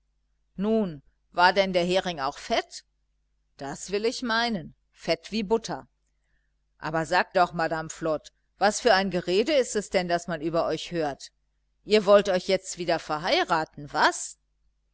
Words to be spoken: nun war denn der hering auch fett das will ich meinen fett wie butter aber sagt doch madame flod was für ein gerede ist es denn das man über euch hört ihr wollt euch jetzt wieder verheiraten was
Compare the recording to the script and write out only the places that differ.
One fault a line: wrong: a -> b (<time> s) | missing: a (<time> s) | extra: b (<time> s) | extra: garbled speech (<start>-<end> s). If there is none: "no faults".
no faults